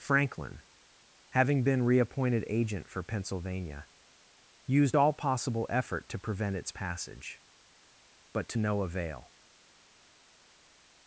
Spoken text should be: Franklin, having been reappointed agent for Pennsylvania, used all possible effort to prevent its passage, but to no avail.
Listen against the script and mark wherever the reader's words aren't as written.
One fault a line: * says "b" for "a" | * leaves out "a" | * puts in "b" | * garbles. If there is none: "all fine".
all fine